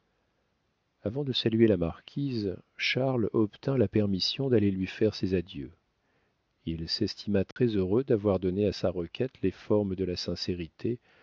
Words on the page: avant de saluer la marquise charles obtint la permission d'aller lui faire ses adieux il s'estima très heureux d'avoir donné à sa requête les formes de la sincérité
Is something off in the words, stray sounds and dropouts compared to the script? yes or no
yes